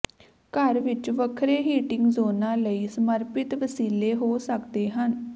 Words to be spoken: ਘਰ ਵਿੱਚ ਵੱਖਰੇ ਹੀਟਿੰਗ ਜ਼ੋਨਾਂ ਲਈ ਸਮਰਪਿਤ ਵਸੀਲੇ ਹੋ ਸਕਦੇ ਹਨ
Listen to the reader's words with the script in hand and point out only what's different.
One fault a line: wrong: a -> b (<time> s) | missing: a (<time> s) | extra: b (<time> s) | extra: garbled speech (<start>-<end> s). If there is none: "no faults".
no faults